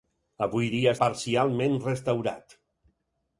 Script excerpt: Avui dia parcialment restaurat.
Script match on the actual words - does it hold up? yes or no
yes